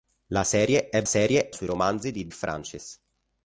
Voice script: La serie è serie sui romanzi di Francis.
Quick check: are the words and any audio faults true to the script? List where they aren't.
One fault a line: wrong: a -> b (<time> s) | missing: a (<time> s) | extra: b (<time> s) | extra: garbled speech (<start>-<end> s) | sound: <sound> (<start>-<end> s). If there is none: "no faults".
no faults